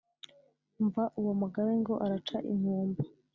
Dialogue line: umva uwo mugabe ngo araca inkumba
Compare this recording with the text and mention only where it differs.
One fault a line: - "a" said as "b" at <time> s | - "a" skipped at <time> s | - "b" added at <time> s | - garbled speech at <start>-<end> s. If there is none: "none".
none